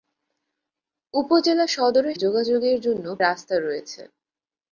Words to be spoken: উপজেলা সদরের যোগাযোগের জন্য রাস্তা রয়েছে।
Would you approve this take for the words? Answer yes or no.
yes